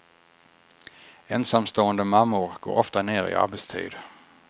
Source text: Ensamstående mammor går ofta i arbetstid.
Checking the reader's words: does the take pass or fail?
fail